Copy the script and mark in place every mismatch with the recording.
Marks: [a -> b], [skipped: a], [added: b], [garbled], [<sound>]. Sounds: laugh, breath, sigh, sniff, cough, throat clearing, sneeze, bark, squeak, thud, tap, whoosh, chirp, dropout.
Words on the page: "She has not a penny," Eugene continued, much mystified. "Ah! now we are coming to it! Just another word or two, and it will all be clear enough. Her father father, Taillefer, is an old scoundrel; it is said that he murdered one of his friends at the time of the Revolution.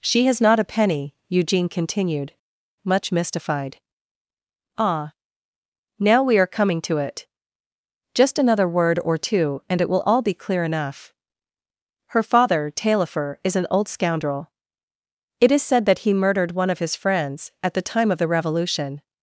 "She has not a penny," Eugene continued, much mystified. "Ah! now we are coming to it! Just another word or two, and it will all be clear enough. Her father [skipped: father,] Taillefer, is an old scoundrel; it is said that he murdered one of his friends at the time of the Revolution.